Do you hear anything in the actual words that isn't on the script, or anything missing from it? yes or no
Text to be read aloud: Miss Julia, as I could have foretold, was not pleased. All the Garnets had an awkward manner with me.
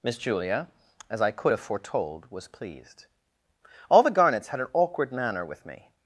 yes